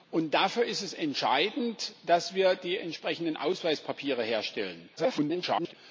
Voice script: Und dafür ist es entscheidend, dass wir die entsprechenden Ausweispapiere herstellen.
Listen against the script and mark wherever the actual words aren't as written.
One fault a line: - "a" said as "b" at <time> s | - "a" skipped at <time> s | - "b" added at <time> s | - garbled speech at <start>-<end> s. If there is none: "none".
- garbled speech at 5.0-5.7 s